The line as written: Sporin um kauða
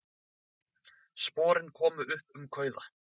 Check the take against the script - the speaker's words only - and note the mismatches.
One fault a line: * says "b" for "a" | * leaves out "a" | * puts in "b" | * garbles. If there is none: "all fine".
* puts in "komu upp"